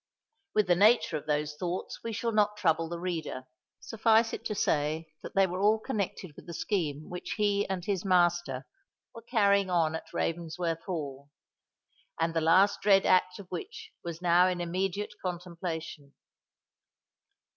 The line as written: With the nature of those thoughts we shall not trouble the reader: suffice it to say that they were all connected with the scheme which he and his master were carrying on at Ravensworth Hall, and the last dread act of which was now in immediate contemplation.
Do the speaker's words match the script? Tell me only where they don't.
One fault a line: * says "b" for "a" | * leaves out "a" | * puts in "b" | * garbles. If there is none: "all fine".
all fine